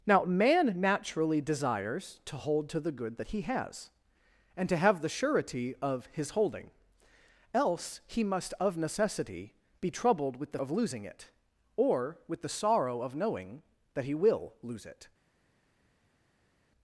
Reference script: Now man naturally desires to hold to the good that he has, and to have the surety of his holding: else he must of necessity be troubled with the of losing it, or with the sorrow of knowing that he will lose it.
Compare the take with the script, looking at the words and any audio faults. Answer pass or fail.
pass